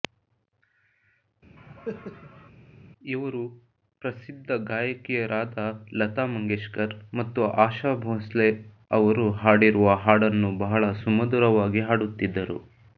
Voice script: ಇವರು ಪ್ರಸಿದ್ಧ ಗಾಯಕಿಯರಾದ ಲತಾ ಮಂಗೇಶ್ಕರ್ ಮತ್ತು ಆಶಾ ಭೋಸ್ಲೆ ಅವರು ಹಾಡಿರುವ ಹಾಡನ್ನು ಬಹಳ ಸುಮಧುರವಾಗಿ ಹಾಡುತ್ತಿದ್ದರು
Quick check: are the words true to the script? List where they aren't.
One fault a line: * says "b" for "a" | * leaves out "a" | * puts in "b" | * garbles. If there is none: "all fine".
all fine